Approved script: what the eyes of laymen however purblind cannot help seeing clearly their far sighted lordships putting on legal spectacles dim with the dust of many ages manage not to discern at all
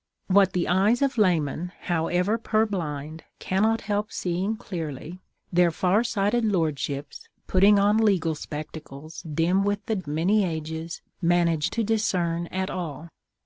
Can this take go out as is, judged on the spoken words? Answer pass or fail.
fail